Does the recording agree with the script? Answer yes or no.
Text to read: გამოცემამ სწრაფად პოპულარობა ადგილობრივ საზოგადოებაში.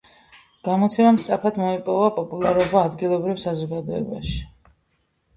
no